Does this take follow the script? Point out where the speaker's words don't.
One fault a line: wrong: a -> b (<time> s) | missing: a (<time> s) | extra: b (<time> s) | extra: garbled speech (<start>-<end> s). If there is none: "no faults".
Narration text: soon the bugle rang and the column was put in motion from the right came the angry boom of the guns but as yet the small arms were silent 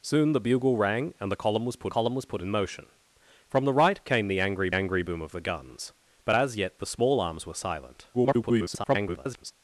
extra: column was put (1.9 s)
extra: angry (4.7 s)
extra: garbled speech (8.1-9.5 s)